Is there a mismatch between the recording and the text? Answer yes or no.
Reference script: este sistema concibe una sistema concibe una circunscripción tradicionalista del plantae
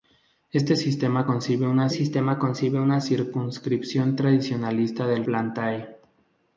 no